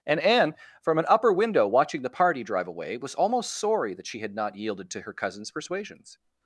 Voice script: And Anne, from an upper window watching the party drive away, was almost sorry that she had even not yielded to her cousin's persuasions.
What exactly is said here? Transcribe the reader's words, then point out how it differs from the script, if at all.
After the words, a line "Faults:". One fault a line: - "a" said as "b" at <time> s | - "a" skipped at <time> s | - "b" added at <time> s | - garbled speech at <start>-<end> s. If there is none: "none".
And Anne, from an upper window watching the party drive away, was almost sorry that she had not yielded to her cousin's persuasions.
Faults:
- "even" skipped at 4.3 s